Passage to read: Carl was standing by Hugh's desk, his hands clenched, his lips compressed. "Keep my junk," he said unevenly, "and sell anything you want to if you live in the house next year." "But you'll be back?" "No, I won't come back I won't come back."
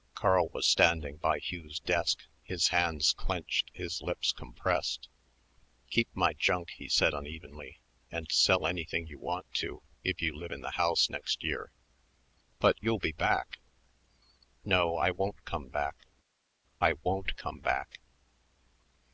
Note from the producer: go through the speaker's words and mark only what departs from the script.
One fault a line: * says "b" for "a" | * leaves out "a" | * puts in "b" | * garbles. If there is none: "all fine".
all fine